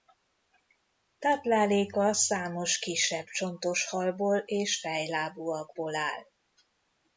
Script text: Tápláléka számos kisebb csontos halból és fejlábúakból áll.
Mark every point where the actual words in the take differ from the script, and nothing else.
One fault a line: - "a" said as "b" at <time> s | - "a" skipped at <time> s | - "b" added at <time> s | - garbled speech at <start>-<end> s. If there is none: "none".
none